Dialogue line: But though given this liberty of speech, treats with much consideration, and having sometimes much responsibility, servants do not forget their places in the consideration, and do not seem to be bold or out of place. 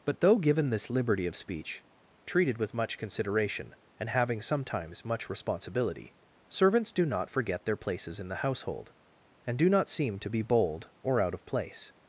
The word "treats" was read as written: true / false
false